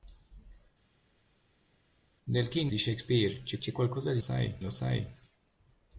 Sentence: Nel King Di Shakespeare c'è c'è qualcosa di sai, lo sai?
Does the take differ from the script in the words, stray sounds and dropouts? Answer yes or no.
no